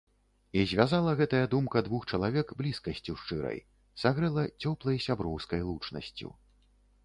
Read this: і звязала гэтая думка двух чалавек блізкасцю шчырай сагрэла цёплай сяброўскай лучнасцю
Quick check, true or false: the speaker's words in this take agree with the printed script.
true